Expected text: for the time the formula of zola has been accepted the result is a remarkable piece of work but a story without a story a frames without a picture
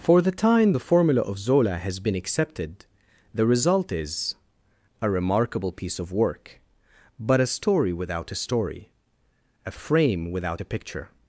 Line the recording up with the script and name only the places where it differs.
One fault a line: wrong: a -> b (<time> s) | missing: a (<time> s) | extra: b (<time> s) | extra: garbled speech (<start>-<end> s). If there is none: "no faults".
wrong: frames -> frame (9.7 s)